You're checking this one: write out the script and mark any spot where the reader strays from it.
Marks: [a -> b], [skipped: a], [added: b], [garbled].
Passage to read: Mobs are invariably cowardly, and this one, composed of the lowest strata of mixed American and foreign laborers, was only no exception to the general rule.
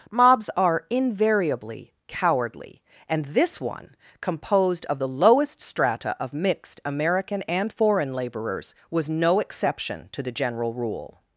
Mobs are invariably cowardly, and this one, composed of the lowest strata of mixed American and foreign laborers, was [skipped: only] no exception to the general rule.